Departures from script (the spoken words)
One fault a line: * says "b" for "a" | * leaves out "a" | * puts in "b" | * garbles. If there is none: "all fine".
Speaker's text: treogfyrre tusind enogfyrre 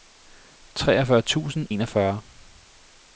all fine